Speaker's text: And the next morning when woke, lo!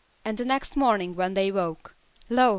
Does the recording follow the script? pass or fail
fail